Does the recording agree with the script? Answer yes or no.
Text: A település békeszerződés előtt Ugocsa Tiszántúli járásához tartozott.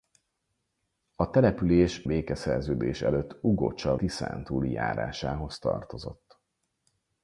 yes